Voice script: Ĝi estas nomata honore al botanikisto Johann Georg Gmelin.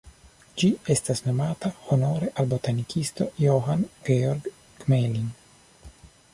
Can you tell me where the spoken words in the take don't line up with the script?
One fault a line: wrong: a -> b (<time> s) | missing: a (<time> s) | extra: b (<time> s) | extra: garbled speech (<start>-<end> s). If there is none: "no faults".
no faults